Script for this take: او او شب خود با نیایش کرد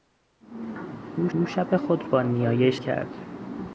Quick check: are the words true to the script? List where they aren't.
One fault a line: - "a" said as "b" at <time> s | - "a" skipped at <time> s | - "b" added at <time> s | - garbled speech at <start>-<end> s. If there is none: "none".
none